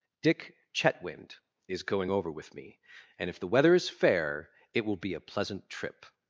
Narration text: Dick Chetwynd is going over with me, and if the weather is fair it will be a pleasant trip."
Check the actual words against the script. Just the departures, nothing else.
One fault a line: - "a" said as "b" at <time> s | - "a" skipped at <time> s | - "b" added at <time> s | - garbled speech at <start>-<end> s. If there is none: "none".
none